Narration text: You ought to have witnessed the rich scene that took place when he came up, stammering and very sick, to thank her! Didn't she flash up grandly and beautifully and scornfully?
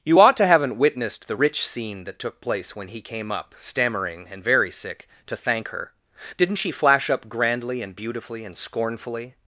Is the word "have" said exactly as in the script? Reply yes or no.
no